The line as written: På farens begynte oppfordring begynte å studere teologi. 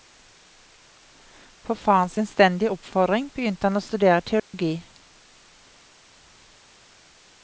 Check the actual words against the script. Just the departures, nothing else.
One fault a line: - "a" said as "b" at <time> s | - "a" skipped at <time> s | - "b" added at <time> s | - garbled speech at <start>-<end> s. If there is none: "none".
- "begynte" said as "innstendige" at 2.2 s
- "han" added at 3.7 s